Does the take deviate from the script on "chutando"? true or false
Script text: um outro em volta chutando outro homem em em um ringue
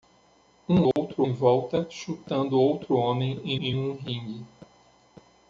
false